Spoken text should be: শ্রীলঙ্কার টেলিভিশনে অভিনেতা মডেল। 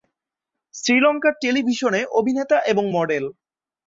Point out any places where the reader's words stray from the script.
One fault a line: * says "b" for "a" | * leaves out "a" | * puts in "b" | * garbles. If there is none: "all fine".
* puts in "এবং"